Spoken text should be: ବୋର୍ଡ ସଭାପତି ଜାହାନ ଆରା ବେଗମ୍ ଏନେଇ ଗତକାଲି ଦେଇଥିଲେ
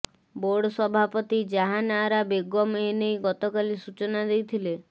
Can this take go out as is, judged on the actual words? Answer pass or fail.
fail